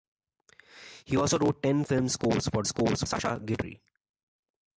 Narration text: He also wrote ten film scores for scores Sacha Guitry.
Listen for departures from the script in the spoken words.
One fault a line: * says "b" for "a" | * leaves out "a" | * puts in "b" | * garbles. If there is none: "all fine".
all fine